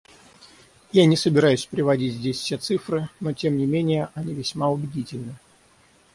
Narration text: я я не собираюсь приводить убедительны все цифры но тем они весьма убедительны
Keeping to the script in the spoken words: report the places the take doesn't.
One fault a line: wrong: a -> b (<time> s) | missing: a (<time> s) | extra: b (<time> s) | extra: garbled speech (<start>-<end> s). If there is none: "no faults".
missing: я (1.1 s)
wrong: убедительны -> здесь (2.1 s)
extra: не менее (3.5 s)